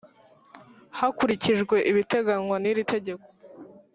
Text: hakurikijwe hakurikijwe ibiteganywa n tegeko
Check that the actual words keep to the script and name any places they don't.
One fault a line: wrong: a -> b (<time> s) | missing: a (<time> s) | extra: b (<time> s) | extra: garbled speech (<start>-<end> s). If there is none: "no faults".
missing: hakurikijwe (1.8 s)
extra: iri (2.7 s)